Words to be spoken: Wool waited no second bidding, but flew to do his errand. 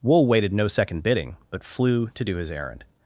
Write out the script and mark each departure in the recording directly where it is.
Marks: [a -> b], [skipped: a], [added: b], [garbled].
Wool waited no second bidding, but flew to do his errand.